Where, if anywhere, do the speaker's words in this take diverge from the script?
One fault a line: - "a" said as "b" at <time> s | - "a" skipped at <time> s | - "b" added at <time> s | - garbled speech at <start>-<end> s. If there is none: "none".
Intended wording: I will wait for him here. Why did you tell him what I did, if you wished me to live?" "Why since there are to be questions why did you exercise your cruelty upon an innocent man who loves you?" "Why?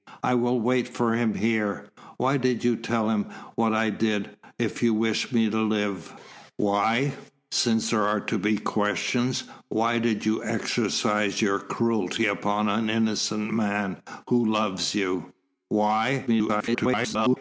- garbled speech at 16.3-17.4 s